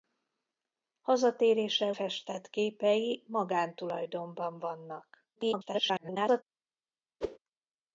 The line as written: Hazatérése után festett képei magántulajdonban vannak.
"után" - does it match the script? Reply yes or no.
no